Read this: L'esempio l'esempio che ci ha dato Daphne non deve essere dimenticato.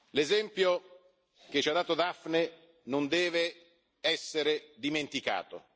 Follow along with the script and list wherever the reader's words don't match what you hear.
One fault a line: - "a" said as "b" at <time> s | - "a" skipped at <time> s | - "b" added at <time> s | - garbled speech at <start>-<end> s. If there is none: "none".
- "l'esempio" skipped at 0.8 s